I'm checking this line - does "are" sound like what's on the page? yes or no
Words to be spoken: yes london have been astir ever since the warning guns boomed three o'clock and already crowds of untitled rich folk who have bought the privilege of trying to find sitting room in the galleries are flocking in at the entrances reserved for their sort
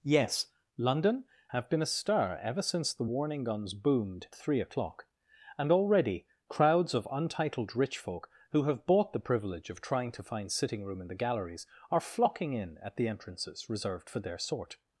yes